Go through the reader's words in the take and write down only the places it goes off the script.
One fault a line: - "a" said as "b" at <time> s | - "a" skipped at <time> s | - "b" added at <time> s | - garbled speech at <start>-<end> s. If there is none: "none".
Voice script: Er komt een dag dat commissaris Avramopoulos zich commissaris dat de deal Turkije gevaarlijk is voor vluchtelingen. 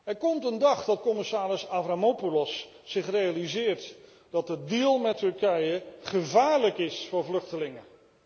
- "commissaris" said as "realiseert" at 3.1 s
- "met" added at 5.0 s